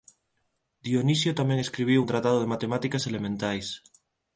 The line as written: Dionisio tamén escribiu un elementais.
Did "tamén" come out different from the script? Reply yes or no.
no